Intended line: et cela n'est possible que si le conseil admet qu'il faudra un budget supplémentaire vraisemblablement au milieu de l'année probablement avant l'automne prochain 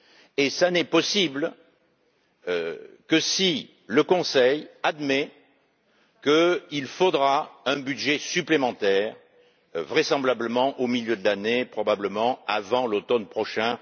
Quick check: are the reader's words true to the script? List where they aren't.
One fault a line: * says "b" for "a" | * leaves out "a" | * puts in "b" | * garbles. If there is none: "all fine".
all fine